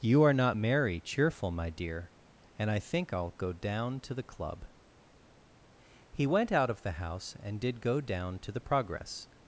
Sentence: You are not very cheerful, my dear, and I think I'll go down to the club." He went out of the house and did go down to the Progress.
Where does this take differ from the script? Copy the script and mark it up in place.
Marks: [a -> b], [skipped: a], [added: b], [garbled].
You are not [very -> merry] cheerful, my dear, and I think I'll go down to the club." He went out of the house and did go down to the Progress.